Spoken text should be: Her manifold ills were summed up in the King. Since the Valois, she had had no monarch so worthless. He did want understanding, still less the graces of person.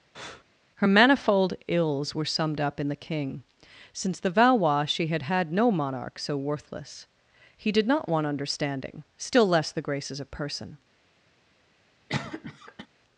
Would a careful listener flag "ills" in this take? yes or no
no